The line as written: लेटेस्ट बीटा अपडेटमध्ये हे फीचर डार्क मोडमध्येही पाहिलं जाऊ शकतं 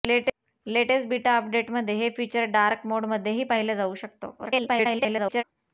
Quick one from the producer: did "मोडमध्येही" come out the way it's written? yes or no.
yes